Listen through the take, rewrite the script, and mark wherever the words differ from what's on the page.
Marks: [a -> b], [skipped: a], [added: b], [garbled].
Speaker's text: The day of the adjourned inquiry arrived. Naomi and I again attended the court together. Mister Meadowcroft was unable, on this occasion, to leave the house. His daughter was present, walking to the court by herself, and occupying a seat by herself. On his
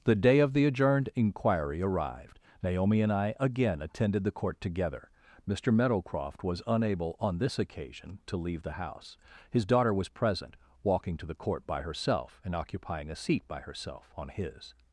The day of the adjourned inquiry arrived. Naomi and I again attended the court together. Mister Meadowcroft was unable, on this occasion, to leave the house. His daughter was present, walking to the court by herself, and occupying a seat by herself. On his